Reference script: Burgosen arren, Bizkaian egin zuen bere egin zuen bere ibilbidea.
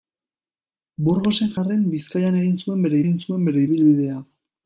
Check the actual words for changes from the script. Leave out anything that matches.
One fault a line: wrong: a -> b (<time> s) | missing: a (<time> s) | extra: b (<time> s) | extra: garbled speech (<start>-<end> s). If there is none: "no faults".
no faults